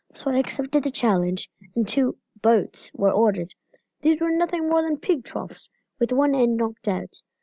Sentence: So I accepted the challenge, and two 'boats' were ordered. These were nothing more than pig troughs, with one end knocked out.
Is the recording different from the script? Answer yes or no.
no